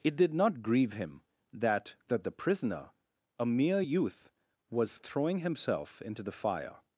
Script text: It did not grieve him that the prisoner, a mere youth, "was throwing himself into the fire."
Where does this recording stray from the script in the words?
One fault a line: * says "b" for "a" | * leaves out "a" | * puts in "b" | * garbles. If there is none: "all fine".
* puts in "that"